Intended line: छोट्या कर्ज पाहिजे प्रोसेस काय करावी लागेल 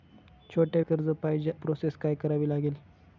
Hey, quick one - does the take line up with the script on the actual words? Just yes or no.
yes